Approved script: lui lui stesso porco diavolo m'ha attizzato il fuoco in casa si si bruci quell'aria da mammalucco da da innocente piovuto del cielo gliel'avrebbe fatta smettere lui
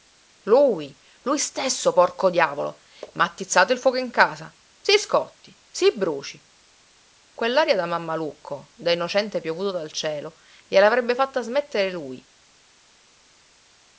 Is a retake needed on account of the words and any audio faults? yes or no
yes